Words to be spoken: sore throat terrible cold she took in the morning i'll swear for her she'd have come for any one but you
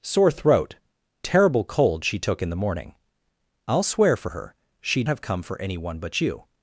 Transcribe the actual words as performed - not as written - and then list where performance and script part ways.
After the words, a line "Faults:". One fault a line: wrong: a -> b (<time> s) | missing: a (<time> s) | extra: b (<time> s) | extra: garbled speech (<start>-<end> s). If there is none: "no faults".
sore throat terrible cold she took in the morning i'll swear for her she'd have come for any one but you
Faults:
no faults